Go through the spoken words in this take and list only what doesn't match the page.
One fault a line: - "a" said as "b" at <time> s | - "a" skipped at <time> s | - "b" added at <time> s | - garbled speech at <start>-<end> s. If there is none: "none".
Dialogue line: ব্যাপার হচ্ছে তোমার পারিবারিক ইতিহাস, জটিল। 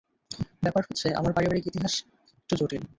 - "তোমার" said as "আমার" at 1.1 s
- "একটু" added at 2.4 s